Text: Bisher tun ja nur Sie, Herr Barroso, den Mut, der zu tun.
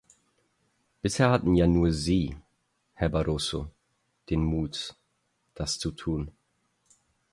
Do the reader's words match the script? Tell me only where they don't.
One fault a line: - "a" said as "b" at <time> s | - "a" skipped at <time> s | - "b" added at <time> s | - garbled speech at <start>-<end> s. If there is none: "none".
- "tun" said as "hatten" at 1.3 s
- "der" said as "das" at 5.6 s